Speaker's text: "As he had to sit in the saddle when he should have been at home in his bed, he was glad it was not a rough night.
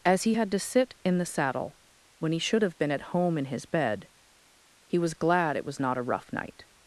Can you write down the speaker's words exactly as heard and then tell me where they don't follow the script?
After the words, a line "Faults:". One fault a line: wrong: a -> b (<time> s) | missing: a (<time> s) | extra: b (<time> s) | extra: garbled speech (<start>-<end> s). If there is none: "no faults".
"As he had to sit in the saddle when he should have been at home in his bed, he was glad it was not a rough night.
Faults:
no faults